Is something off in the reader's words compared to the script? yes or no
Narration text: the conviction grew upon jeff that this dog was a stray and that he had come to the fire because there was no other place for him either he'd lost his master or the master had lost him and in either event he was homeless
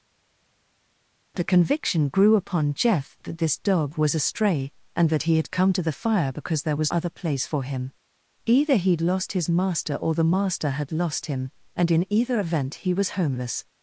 yes